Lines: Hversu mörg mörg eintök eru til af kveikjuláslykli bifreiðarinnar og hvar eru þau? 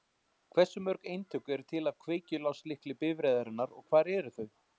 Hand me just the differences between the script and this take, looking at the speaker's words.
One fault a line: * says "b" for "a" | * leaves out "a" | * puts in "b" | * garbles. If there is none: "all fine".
* leaves out "mörg"